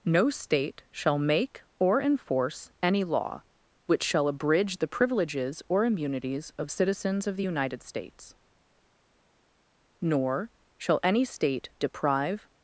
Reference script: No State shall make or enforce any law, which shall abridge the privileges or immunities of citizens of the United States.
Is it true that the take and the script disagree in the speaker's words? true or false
true